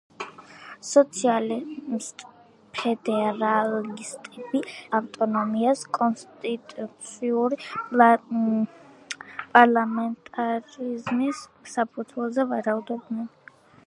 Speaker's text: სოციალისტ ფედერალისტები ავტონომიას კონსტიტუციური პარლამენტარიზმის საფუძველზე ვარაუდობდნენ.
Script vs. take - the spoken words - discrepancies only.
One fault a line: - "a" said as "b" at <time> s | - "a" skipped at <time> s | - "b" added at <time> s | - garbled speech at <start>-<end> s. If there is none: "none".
none